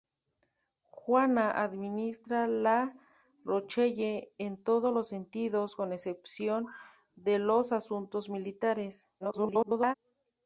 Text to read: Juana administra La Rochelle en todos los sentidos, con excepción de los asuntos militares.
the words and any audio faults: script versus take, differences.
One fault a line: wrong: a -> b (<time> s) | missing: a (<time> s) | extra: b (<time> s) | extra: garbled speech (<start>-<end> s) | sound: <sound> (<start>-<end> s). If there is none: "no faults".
extra: garbled speech (9.2-9.9 s)